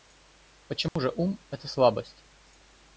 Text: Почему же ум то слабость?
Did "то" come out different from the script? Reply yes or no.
yes